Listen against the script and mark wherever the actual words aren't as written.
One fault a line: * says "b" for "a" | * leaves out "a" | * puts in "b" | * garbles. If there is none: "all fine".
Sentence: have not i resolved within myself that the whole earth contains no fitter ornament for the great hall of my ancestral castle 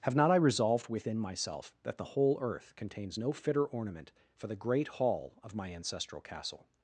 all fine